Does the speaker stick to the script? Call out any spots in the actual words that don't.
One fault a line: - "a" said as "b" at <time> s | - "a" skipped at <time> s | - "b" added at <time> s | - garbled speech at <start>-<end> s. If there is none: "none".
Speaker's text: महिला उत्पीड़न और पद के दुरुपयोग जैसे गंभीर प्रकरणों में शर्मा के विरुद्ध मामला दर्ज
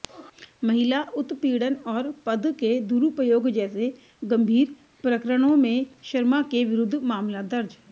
none